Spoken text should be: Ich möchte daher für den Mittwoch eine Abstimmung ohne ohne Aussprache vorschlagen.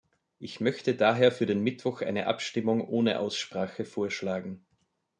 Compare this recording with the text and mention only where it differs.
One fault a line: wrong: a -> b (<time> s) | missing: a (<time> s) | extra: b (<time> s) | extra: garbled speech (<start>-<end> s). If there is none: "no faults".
missing: ohne (3.2 s)